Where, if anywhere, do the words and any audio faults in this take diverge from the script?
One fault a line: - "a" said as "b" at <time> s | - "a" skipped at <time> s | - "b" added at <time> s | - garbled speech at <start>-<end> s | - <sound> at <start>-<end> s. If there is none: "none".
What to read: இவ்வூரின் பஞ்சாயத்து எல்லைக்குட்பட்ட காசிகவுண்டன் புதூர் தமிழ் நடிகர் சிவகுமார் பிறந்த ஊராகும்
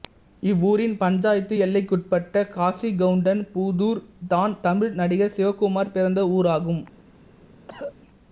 - "தான்" added at 4.3 s
- cough at 7.7-7.9 s